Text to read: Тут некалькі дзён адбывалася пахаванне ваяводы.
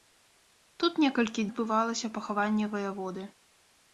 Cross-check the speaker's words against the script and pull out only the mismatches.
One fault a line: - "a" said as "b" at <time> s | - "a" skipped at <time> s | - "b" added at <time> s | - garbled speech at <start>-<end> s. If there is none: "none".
- "дзён" skipped at 1.4 s